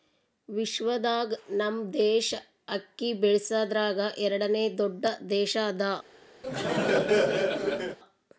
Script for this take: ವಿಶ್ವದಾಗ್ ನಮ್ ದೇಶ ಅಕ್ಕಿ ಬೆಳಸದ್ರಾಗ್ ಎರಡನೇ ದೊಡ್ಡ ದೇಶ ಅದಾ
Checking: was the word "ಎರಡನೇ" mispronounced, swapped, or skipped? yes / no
no